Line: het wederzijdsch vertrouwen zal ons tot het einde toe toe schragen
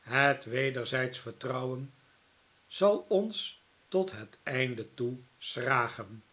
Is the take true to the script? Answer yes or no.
no